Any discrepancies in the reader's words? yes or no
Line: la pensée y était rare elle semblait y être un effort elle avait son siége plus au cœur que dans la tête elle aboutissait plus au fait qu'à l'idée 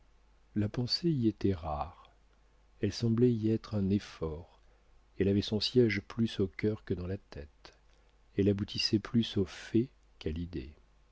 no